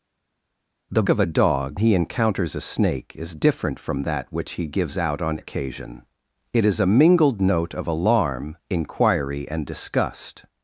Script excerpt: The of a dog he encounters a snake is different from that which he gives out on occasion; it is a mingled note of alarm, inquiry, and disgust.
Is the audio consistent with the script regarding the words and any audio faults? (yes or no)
yes